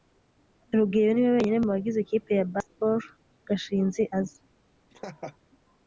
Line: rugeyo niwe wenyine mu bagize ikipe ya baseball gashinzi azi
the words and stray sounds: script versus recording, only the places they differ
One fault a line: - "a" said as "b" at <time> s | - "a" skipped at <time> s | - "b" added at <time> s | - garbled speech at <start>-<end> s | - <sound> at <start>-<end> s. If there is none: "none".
- laugh at 4.9-5.4 s